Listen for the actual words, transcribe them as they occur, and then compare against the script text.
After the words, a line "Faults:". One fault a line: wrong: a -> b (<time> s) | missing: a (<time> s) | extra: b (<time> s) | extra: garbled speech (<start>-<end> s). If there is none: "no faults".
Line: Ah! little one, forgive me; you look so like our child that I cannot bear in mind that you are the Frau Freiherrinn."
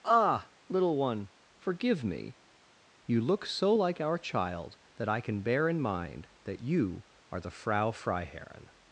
Ah! little one, forgive me; you look so like our child that I can bear in mind that you are the Frau Freiherrinn."
Faults:
wrong: cannot -> can (5.2 s)